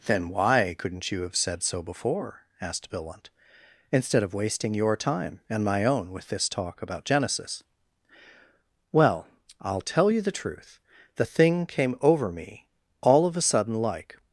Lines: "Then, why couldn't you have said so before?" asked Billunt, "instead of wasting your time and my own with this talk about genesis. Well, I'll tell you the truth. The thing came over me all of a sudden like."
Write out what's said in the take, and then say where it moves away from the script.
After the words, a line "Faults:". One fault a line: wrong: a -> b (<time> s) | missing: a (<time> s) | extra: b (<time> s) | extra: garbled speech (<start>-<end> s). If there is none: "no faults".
"Then, why couldn't you have said so before?" asked Billunt, "instead of wasting your time and my own with this talk about genesis. Well, I'll tell you the truth. The thing came over me all of a sudden like."
Faults:
no faults